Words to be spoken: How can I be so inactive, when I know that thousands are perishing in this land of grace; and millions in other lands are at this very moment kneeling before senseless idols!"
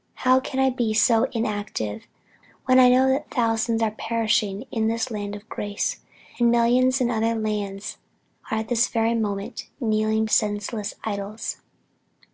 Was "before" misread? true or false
true